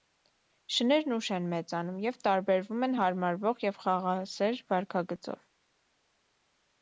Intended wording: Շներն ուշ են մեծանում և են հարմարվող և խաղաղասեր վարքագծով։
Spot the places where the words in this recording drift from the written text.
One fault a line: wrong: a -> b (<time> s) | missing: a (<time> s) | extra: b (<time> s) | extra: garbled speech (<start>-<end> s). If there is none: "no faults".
extra: տարբերվում (2.3 s)